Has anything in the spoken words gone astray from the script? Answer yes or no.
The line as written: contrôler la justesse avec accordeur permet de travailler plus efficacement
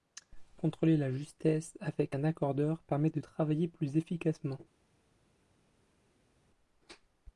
yes